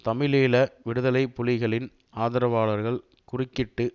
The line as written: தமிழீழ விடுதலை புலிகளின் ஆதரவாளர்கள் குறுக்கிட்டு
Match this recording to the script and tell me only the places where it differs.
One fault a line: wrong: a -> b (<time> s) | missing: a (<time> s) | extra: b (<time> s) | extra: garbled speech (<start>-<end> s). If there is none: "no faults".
no faults